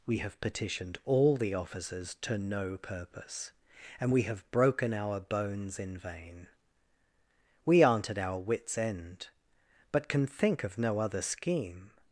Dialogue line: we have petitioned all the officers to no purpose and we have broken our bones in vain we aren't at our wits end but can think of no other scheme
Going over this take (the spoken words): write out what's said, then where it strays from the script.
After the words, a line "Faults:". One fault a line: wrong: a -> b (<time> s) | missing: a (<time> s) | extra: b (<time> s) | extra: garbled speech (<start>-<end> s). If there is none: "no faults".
we have petitioned all the officers to no purpose and we have broken our bones in vain we aren't at our wits end but can think of no other scheme
Faults:
no faults